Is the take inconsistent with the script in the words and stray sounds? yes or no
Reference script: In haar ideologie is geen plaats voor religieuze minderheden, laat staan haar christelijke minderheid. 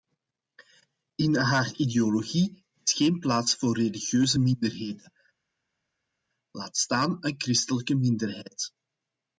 yes